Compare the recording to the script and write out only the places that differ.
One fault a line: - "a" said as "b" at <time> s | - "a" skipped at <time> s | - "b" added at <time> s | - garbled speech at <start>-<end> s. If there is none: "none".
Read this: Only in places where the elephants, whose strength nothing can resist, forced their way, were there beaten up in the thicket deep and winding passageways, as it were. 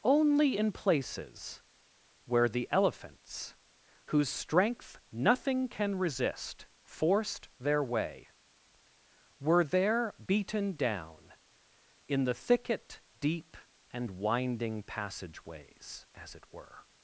- "up" said as "down" at 10.7 s